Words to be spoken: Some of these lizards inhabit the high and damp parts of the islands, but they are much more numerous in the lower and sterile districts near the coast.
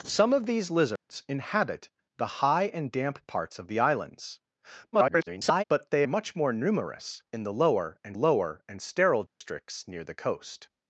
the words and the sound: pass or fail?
fail